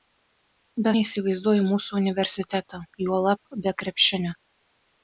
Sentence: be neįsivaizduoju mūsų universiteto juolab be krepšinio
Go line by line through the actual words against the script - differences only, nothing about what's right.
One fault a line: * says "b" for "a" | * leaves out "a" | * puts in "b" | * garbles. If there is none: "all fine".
all fine